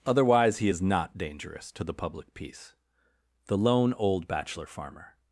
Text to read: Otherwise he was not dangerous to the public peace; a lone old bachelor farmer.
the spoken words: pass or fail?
fail